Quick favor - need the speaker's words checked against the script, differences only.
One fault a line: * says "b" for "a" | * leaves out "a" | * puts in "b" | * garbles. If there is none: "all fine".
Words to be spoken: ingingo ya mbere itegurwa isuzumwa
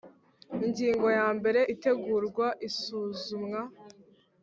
all fine